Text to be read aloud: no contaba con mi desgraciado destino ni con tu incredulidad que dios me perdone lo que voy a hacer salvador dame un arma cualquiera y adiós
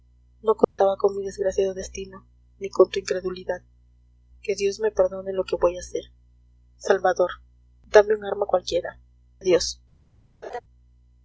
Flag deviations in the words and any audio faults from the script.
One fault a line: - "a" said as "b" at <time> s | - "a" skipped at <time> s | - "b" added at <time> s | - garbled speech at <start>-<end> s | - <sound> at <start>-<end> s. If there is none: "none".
- dropout at 0.6-0.8 s
- "y" skipped at 9.0 s
- laugh at 10.4-10.6 s